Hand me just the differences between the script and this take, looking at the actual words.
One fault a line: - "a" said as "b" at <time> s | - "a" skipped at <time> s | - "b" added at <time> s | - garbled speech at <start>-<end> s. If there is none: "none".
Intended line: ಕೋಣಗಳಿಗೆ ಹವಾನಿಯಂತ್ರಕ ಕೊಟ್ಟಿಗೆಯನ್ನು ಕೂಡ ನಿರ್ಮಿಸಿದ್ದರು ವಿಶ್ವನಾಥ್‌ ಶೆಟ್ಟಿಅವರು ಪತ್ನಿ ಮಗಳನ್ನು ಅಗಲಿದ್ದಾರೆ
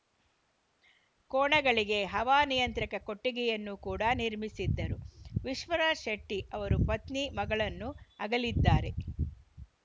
none